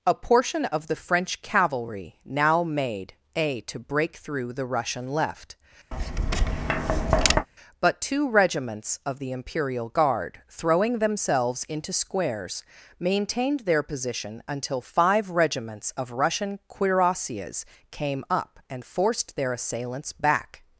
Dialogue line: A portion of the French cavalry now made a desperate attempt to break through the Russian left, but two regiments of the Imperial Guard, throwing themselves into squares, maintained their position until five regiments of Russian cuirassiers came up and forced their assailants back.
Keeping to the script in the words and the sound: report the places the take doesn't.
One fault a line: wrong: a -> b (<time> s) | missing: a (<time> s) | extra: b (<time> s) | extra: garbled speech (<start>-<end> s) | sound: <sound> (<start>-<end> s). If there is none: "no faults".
missing: desperate attempt (3.6 s)
sound: tap (5.9-7.5 s)